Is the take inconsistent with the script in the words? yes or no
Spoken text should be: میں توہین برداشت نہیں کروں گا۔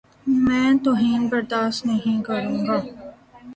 no